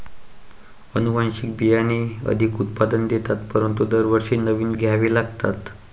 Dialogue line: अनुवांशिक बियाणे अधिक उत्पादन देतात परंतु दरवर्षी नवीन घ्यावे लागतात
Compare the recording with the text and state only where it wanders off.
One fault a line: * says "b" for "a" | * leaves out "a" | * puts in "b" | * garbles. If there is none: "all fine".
all fine